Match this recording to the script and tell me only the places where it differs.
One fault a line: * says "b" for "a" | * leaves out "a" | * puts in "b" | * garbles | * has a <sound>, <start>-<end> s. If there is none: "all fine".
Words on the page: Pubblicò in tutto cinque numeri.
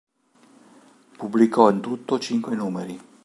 all fine